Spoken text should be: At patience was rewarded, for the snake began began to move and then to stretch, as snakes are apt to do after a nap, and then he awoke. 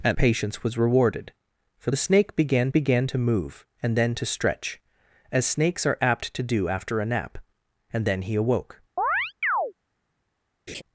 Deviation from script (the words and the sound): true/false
true